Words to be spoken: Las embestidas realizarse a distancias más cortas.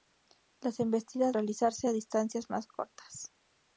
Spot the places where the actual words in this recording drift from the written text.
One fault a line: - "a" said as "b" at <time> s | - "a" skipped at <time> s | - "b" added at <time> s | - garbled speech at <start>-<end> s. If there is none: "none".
none